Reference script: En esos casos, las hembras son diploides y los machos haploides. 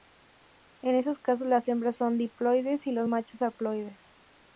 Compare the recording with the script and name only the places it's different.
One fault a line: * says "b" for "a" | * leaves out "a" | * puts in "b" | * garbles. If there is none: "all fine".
all fine